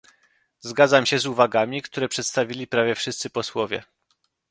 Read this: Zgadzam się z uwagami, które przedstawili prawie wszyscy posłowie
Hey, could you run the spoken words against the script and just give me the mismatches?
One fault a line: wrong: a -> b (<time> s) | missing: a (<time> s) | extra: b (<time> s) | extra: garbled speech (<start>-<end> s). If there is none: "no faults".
no faults